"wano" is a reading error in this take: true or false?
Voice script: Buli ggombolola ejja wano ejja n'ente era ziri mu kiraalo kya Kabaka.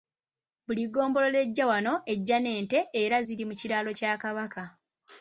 false